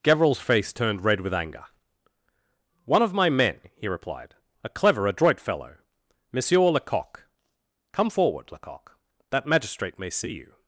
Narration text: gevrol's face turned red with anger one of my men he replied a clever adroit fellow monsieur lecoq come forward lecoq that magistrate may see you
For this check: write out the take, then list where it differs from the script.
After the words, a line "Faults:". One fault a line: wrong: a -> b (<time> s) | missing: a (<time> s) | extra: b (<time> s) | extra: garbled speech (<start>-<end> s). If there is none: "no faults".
gevrol's face turned red with anger one of my men he replied a clever adroit fellow monsieur lecoq come forward lecoq that magistrate may see you
Faults:
no faults